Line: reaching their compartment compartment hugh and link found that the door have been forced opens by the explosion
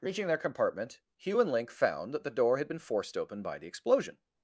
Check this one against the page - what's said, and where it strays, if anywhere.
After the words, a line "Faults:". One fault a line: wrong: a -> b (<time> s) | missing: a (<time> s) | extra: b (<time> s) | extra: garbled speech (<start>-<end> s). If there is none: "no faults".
reaching their compartment hugh and link found that the door had been forced open by the explosion
Faults:
missing: compartment (1.0 s)
wrong: have -> had (2.6 s)
wrong: opens -> open (3.2 s)